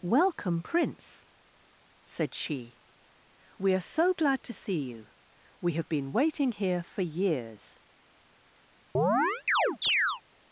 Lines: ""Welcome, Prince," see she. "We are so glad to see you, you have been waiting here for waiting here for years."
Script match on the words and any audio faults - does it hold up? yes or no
no